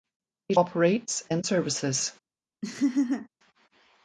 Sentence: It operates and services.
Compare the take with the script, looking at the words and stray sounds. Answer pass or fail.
fail